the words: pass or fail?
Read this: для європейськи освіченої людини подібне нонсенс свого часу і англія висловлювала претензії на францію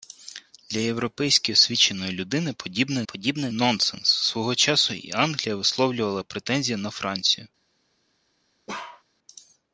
fail